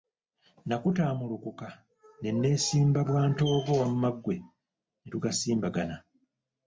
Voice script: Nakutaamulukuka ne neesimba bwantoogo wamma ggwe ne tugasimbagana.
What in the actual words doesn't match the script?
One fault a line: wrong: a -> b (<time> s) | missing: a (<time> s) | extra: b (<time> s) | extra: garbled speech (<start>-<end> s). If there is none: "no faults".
no faults